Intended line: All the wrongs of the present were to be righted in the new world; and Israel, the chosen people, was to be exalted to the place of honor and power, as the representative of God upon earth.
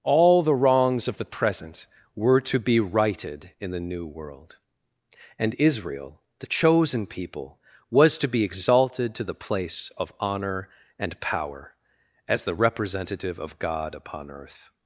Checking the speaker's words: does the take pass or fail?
pass